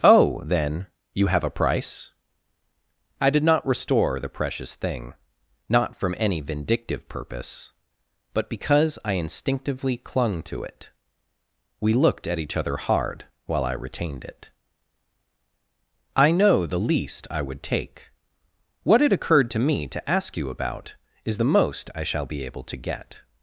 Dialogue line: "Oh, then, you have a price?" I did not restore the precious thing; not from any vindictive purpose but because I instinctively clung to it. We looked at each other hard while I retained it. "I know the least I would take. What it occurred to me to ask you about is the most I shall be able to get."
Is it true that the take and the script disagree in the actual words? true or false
false